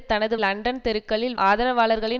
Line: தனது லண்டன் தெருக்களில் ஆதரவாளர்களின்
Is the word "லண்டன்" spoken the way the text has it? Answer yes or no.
yes